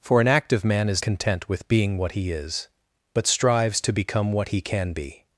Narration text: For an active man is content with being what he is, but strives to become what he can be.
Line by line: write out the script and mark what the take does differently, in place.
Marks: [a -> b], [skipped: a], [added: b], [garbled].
For an active man is content with being what he is, but strives to become what he can be.